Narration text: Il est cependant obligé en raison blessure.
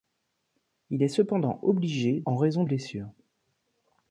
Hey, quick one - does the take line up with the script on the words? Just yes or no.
yes